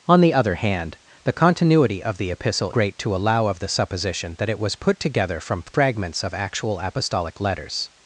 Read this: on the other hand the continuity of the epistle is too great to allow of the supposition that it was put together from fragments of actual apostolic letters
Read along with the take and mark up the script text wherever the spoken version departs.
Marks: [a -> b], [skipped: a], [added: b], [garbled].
on the other hand the continuity of the epistle [skipped: is too] great to allow of the supposition that it was put together from fragments of actual apostolic letters